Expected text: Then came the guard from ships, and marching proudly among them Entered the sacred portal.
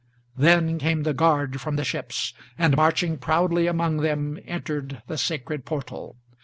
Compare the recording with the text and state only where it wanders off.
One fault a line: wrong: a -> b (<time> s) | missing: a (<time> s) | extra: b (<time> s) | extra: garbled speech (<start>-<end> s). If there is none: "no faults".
extra: the (1.7 s)